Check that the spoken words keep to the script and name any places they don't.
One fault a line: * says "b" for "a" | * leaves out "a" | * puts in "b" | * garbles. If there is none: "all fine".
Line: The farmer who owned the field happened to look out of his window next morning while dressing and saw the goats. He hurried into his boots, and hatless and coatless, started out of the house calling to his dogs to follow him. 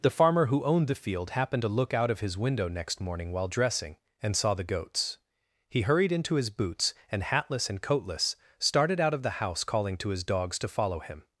all fine